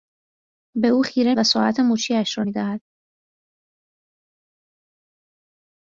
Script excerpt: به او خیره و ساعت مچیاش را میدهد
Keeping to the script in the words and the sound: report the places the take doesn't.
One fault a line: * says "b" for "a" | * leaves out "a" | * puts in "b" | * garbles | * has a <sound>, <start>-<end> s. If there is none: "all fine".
all fine